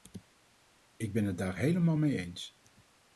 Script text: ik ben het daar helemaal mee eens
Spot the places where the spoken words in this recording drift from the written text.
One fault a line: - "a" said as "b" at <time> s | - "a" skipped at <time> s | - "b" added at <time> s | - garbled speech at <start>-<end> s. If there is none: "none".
none